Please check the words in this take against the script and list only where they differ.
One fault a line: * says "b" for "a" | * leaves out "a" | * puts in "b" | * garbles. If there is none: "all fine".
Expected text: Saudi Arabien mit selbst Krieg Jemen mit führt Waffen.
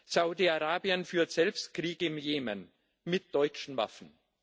* says "führt" for "mit"
* puts in "im"
* says "deutschen" for "führt"